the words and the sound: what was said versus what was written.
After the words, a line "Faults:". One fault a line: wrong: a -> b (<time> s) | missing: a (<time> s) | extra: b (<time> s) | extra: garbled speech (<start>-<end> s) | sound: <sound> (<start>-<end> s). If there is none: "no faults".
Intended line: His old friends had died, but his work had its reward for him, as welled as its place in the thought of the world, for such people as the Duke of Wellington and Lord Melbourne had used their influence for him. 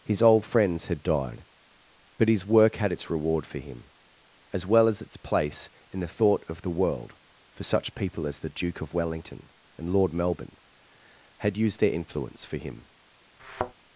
His old friends had died, but his work had its reward for him, as well as its place in the thought of the world, for such people as the Duke of Wellington and Lord Melbourne had used their influence for him.
Faults:
wrong: welled -> well (4.7 s)
sound: thud (13.4-13.7 s)